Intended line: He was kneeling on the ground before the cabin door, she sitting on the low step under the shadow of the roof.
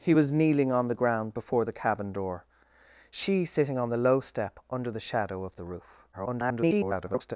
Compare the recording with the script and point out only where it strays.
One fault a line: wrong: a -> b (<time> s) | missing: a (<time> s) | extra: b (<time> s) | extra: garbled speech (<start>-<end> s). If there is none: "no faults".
extra: garbled speech (6.1-7.4 s)